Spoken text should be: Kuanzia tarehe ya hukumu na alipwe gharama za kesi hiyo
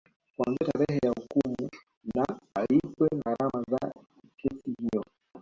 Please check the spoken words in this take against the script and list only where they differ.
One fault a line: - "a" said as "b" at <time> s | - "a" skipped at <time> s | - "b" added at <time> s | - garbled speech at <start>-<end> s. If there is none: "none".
none